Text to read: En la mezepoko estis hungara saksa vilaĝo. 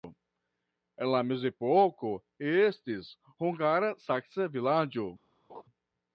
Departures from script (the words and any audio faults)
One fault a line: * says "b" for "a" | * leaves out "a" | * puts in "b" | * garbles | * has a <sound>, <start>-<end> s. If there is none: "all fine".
* has a laugh, 5.5-5.6 s